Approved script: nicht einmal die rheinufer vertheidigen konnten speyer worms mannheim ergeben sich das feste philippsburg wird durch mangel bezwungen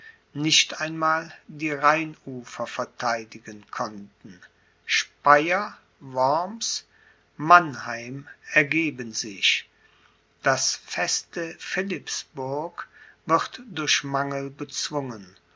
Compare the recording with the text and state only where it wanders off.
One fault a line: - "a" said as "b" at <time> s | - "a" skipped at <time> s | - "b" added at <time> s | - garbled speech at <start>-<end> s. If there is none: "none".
none